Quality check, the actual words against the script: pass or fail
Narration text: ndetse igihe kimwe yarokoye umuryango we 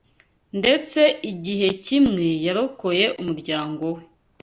pass